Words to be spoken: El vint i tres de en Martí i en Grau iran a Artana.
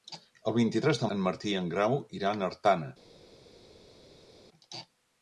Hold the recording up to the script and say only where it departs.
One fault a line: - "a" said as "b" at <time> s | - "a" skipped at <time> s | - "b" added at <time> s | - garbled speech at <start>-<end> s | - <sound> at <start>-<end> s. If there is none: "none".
none